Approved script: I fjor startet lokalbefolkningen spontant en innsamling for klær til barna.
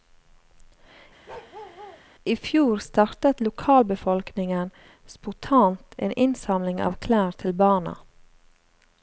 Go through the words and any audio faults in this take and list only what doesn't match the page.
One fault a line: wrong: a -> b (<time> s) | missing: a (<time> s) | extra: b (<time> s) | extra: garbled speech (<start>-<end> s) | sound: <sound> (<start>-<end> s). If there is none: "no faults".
sound: bark (1.3-2.0 s)
wrong: for -> av (6.8 s)